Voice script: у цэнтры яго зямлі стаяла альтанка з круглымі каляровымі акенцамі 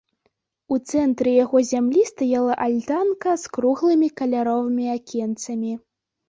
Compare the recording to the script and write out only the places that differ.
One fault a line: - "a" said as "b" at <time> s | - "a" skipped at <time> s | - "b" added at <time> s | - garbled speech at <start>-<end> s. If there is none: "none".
none